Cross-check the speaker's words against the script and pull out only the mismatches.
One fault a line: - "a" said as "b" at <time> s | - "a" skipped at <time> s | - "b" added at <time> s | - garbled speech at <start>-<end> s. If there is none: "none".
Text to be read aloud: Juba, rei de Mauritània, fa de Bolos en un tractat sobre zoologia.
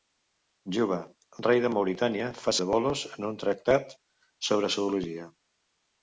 none